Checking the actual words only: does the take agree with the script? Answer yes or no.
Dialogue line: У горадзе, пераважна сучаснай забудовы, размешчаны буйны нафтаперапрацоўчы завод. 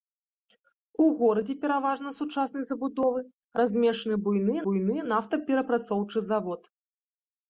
no